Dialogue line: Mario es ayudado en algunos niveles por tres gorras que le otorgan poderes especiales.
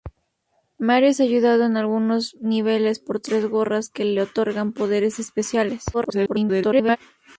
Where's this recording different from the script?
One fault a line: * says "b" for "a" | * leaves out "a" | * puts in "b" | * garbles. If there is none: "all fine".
* garbles